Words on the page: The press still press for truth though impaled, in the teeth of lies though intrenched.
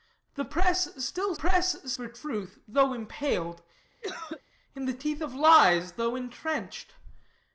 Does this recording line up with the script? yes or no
yes